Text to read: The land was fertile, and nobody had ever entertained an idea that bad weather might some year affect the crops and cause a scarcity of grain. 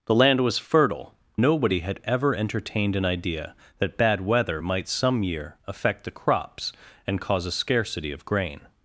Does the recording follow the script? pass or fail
fail